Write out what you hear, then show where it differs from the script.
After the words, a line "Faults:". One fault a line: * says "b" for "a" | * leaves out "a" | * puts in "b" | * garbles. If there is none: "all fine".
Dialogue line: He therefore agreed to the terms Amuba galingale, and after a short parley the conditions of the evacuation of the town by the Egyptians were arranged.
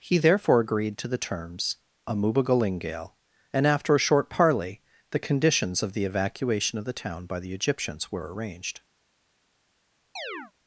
He therefore agreed to the terms Amuba galingale, and after a short parley the conditions of the evacuation of the town by the Egyptians were arranged.
Faults:
all fine